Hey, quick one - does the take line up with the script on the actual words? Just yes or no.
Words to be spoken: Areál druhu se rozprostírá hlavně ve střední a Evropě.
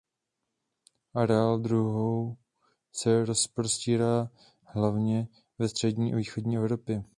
no